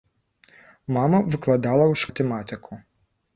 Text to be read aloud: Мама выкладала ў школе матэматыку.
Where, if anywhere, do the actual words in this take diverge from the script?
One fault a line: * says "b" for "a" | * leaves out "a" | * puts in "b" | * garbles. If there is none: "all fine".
* leaves out "школе"